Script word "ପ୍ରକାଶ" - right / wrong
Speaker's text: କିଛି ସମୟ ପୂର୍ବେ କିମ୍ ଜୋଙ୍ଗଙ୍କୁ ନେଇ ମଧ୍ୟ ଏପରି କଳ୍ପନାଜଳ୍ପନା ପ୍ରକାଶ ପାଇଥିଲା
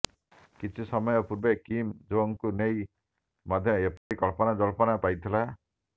wrong